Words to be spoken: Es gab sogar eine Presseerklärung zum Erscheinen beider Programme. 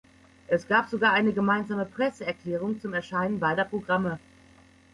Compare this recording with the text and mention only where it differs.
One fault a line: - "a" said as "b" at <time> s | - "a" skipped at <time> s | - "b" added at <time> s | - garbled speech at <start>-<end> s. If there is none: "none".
- "gemeinsame" added at 1.3 s